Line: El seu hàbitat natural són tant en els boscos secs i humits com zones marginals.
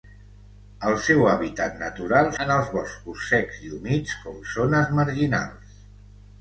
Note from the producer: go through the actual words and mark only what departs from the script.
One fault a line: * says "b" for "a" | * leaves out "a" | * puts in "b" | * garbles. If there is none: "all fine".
* leaves out "són tant"